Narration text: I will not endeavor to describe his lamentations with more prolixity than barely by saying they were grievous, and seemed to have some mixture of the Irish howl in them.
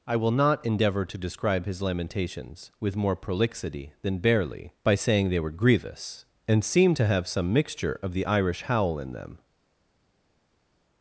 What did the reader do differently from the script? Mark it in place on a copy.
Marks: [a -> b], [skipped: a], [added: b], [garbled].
I will not endeavor to describe his lamentations with more prolixity than barely by saying they were grievous, and seemed to have some mixture of the Irish howl in them.